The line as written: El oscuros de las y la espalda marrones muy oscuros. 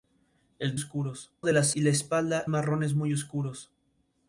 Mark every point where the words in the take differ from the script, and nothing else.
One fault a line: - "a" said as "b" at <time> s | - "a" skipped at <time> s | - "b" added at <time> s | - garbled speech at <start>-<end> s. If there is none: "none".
none